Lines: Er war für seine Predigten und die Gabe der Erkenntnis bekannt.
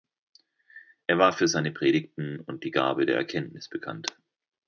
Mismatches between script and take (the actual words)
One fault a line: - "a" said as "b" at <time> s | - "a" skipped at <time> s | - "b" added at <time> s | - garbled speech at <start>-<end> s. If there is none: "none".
none